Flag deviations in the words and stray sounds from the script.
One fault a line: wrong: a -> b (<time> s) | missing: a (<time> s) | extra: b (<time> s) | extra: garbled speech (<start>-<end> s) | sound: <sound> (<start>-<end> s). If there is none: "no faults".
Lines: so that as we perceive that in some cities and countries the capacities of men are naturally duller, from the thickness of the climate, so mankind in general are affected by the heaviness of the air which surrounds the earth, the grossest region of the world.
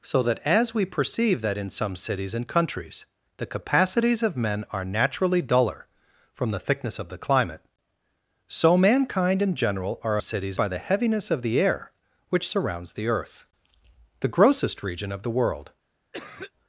wrong: affected -> cities (10.2 s)
sound: cough (16.1-16.5 s)